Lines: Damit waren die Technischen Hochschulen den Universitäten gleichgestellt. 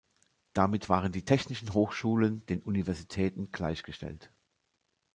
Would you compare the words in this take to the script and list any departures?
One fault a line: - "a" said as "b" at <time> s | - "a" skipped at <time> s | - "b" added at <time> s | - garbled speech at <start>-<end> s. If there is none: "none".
none